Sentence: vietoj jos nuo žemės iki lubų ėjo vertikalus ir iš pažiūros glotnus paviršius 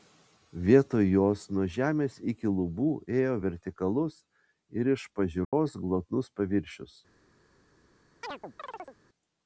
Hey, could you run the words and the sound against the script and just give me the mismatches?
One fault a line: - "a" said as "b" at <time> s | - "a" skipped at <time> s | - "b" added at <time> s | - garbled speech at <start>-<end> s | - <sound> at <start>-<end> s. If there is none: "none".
- dropout at 5.4-5.5 s
- chirp at 8.2-9.0 s